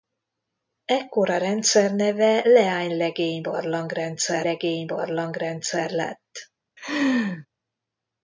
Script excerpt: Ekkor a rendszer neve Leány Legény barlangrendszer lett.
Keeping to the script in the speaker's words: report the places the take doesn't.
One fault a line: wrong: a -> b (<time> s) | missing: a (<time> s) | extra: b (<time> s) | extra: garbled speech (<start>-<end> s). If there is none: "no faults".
extra: Legény barlangrendszer (4.4 s)